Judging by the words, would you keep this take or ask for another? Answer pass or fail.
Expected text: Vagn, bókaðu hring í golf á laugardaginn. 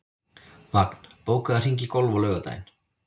pass